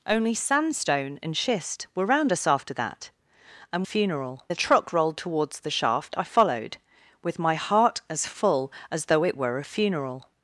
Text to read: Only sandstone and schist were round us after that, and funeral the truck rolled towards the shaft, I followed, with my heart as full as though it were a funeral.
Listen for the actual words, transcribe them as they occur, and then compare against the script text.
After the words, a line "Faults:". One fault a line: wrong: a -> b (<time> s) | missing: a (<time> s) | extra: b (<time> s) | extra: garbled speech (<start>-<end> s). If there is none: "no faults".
Only sandstone and schist were round us after that, and funeral the truck rolled towards the shaft, I followed, with my heart as full as though it were a funeral.
Faults:
no faults